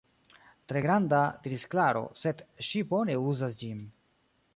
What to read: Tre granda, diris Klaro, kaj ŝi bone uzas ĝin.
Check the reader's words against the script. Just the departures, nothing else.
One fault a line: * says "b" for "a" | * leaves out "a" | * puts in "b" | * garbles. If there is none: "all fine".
* says "sed" for "kaj"